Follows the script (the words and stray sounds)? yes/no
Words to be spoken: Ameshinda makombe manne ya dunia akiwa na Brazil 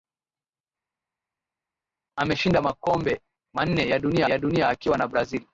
no